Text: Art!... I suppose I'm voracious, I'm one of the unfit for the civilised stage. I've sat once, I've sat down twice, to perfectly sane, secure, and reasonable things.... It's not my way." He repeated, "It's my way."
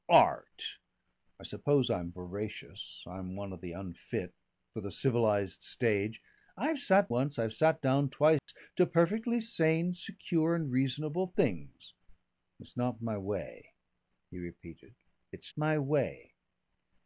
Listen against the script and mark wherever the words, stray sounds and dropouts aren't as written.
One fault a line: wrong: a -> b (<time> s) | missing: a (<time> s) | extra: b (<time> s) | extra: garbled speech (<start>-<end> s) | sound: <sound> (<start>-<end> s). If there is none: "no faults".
sound: dropout (8.4-8.5 s)